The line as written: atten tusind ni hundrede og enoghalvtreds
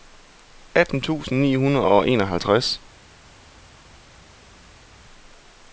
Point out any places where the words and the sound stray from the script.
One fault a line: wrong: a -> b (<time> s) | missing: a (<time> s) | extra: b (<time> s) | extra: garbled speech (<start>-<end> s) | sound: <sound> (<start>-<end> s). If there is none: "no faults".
no faults